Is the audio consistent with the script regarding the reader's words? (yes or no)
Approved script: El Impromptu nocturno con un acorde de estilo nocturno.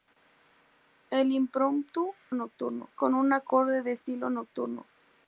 yes